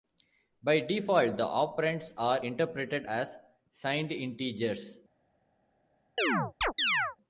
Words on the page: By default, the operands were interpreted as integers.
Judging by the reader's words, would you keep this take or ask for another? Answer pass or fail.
fail